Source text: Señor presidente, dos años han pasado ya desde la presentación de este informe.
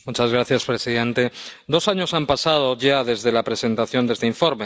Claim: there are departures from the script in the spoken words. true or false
false